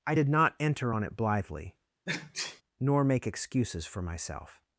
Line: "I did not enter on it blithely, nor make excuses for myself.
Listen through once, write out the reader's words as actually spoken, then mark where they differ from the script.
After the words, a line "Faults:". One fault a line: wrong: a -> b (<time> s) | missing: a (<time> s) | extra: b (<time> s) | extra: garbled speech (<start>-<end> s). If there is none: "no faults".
"I did not enter on it blithely, nor make excuses for myself.
Faults:
no faults